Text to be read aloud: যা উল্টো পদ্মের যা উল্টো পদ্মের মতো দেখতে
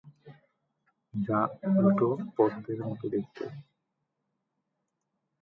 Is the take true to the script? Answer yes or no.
no